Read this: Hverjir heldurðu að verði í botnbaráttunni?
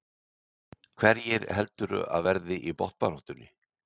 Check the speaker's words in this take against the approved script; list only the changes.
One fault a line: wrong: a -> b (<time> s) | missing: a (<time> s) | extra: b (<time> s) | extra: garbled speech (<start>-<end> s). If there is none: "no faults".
no faults